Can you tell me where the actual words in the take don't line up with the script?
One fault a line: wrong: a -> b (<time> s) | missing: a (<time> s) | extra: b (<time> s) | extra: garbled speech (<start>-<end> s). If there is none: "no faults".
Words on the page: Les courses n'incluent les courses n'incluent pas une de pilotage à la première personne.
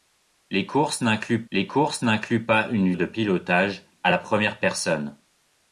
no faults